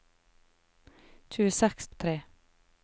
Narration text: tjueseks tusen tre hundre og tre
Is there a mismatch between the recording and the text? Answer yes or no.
yes